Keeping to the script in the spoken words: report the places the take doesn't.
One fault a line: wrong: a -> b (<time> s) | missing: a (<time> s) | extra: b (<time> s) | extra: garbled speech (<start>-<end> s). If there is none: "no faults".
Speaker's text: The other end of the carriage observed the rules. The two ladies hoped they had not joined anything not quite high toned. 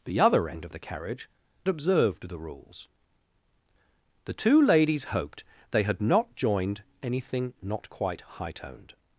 no faults